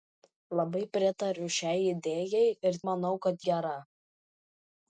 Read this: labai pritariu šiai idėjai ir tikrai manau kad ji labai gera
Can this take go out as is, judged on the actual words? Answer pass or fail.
fail